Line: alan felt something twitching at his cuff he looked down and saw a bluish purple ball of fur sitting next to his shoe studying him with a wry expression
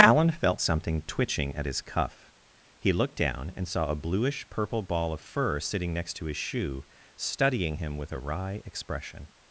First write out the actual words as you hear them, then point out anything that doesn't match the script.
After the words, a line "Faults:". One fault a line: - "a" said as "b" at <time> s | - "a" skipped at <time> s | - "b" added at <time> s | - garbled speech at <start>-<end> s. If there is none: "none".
alan felt something twitching at his cuff he looked down and saw a bluish purple ball of fur sitting next to his shoe studying him with a wry expression
Faults:
none